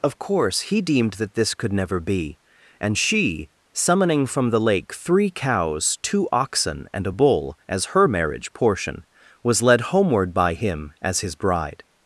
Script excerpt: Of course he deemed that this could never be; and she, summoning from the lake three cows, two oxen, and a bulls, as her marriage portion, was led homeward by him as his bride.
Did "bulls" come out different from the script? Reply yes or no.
yes